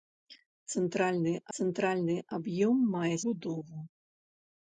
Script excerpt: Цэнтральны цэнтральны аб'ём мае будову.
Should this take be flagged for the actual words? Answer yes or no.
no